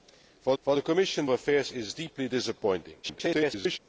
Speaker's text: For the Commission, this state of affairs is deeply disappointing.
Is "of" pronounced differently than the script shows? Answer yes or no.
yes